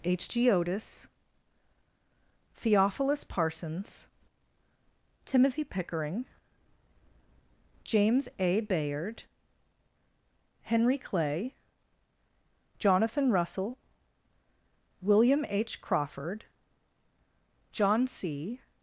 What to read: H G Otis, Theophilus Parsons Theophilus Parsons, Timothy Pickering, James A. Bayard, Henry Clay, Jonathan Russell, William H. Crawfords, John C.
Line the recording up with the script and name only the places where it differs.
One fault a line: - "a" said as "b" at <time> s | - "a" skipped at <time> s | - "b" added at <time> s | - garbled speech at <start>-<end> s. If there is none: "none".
- "Theophilus Parsons" skipped at 4.1 s
- "Crawfords" said as "Crawford" at 15.8 s